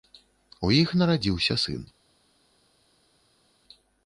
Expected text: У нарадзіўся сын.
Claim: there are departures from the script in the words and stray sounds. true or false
true